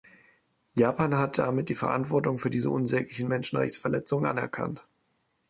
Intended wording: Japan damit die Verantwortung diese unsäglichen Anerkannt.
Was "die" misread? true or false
false